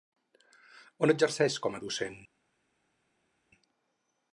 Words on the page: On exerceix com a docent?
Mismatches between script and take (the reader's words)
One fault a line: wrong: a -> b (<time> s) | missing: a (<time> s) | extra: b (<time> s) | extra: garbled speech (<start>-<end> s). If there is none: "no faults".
no faults